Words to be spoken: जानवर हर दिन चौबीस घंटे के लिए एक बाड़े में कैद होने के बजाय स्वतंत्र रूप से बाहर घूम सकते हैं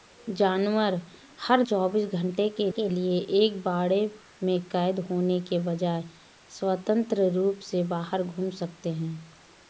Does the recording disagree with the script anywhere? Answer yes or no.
yes